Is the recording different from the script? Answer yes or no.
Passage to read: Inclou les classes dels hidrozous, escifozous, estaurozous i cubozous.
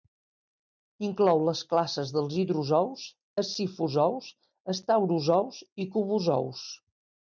no